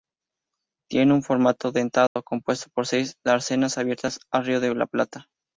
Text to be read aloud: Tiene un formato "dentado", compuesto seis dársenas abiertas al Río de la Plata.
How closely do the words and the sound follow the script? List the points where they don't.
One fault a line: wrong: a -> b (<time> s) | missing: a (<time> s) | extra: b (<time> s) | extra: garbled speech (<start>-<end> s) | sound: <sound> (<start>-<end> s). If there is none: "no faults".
sound: dropout (2.1-2.2 s)
extra: por (2.7 s)